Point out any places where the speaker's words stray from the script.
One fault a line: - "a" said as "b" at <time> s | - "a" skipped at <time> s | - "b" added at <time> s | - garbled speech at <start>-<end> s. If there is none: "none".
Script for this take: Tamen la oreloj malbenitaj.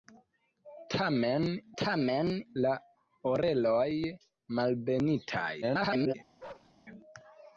- "tamen" added at 1.8 s
- garbled speech at 5.6-6.1 s